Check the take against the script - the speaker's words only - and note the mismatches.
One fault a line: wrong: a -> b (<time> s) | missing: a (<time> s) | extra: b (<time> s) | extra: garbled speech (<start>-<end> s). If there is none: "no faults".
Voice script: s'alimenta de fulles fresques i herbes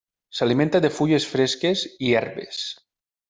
no faults